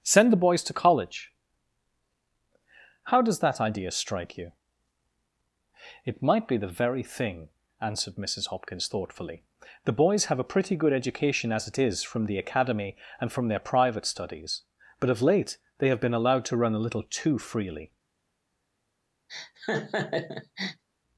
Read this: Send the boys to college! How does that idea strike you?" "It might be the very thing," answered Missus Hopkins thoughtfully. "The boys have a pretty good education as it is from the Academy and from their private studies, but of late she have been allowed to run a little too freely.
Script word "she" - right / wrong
wrong